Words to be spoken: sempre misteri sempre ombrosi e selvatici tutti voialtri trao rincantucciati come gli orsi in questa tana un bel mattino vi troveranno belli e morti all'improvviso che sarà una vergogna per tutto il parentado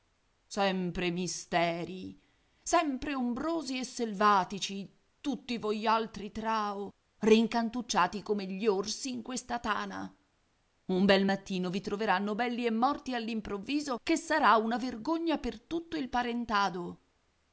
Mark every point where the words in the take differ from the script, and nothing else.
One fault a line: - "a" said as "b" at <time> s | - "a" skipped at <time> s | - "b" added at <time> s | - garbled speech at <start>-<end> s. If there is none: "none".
none